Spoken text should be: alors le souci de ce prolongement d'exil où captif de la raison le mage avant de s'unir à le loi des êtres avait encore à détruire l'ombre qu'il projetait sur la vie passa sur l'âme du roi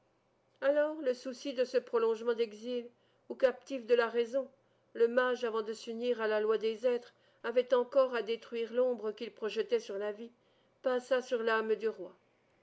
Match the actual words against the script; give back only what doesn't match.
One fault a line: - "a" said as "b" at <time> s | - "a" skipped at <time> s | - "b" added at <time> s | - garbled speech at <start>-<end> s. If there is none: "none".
- "le" said as "la" at 6.3 s